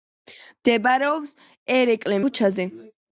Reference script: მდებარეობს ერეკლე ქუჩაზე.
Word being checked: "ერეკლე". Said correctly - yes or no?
yes